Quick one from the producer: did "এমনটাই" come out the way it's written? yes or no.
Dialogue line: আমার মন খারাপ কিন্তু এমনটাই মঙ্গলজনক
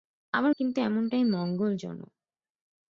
yes